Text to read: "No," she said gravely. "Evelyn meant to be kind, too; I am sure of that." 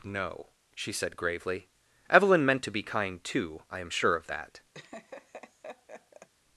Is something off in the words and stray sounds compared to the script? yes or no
yes